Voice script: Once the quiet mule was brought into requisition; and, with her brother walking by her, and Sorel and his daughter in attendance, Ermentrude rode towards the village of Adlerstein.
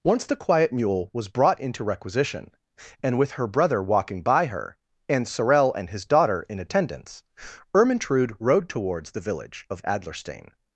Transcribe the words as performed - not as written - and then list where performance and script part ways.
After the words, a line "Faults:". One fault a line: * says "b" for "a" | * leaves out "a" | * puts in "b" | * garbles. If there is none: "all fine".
Once the quiet mule was brought into requisition; and, with her brother walking by her, and Sorel and his daughter in attendance, Ermentrude rode towards the village of Adlerstein.
Faults:
all fine